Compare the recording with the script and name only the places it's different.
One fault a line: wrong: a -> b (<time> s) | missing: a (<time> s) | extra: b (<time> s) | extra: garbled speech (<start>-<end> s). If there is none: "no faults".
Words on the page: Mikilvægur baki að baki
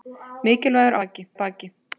no faults